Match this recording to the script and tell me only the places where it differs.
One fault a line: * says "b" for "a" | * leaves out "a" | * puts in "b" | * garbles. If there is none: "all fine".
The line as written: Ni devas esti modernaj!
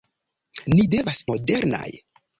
* leaves out "esti"